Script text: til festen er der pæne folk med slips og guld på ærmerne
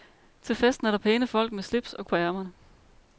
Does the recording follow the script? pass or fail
fail